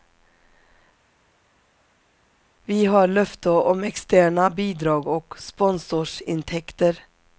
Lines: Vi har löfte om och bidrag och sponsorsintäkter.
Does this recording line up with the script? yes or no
no